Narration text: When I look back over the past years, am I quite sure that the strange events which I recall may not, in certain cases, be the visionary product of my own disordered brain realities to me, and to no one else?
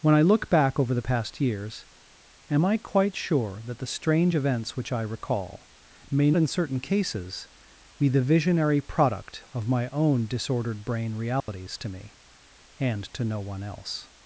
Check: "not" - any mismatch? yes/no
yes